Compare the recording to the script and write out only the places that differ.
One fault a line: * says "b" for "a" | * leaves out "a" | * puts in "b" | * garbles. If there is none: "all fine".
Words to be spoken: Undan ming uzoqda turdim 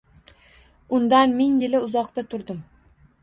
* puts in "yili"